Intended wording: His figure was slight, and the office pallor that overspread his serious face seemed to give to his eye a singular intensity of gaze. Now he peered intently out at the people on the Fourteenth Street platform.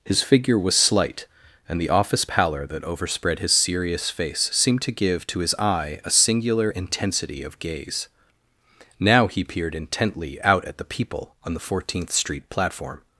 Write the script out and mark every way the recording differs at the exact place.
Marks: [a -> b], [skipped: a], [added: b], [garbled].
His figure was slight, and the office pallor that overspread his serious face seemed to give to his eye a singular intensity of gaze. Now he peered intently out at the people on the Fourteenth Street platform.